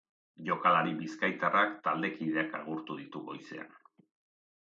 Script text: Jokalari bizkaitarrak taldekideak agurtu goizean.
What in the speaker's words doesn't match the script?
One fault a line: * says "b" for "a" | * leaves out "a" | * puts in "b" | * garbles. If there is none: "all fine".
* puts in "ditu"